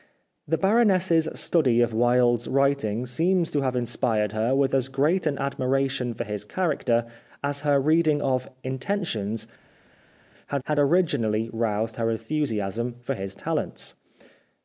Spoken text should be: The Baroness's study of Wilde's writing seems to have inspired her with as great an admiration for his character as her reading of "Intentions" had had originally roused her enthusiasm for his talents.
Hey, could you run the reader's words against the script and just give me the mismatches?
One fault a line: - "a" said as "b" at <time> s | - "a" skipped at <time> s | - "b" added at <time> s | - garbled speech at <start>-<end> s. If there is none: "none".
none